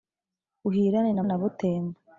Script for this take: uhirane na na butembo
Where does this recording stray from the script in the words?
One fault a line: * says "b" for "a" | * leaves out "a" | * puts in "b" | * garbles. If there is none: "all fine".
all fine